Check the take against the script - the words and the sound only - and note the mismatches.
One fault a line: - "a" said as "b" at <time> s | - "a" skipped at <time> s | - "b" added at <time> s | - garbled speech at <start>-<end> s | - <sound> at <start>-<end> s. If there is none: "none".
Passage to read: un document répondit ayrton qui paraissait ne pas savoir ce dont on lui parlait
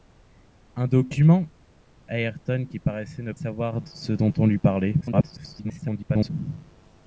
- "répondit" skipped at 1.4 s
- "pas" skipped at 3.3 s
- garbled speech at 5.0-6.3 s